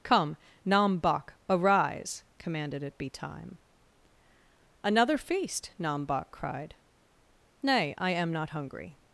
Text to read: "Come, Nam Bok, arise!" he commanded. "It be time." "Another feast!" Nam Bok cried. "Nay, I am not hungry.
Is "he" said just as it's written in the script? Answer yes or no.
no